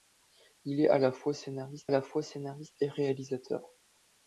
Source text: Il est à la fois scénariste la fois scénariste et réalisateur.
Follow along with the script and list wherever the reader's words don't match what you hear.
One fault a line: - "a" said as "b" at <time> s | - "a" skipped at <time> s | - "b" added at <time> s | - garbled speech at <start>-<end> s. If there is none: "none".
none